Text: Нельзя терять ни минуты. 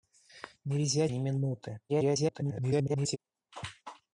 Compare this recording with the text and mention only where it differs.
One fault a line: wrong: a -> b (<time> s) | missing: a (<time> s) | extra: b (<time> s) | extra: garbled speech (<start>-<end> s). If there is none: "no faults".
missing: терять (1.1 s)
extra: garbled speech (1.9-3.2 s)